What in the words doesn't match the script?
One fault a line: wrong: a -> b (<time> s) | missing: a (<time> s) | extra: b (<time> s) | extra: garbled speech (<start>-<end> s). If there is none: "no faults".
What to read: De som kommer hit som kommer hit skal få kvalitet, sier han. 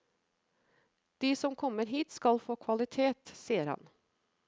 missing: som kommer hit (2.1 s)